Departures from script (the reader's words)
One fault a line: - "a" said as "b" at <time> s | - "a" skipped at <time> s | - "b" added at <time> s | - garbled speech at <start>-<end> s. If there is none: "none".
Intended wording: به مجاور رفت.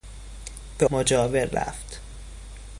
none